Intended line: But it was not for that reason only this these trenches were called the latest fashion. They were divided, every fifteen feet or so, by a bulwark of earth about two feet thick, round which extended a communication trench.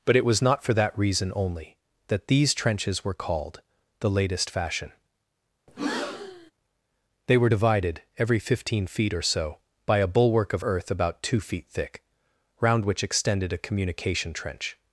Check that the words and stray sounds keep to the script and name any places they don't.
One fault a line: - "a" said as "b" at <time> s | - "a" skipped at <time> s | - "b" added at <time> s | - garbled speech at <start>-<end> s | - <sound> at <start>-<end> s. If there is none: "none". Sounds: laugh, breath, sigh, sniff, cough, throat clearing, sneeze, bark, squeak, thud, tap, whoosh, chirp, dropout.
- "this" said as "that" at 2.1 s
- breath at 5.7-6.5 s